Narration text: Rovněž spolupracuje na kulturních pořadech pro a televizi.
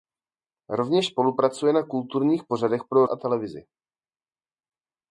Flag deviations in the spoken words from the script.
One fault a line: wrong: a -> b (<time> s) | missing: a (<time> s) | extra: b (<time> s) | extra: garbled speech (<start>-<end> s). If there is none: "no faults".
no faults